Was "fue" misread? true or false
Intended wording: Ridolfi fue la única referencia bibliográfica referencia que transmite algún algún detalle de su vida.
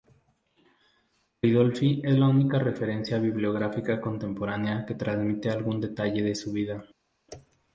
true